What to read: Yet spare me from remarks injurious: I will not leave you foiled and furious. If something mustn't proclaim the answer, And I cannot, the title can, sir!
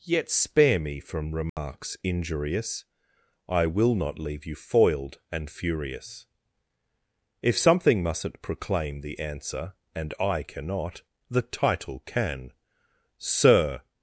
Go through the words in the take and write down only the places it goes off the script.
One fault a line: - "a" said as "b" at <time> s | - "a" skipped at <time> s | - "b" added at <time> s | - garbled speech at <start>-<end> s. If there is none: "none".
none